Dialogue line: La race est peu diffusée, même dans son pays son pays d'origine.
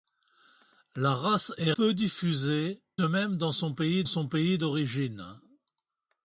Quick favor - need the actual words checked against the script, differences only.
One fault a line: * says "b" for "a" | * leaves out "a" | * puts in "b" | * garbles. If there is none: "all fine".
all fine